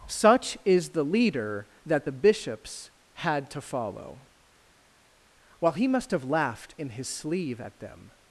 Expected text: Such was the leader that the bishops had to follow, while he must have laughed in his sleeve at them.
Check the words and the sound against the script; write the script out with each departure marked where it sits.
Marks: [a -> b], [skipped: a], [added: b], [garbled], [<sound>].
Such [was -> is] the leader that the bishops had to follow, while he must have laughed in his sleeve at them.